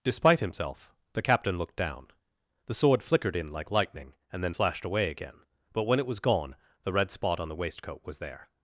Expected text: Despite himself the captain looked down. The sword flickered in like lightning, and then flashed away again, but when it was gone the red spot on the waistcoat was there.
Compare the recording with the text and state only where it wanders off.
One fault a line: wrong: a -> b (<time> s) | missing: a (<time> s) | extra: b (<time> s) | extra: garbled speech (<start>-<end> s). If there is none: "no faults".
no faults